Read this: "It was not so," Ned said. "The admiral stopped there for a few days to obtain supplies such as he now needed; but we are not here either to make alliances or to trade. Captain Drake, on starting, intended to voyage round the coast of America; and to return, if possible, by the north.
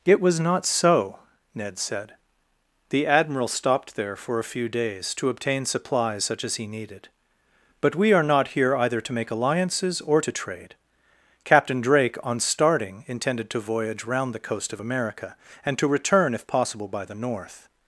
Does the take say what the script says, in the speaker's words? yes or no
no